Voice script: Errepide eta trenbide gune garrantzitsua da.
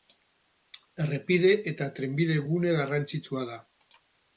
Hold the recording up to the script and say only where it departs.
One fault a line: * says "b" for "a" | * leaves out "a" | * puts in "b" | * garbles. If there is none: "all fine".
all fine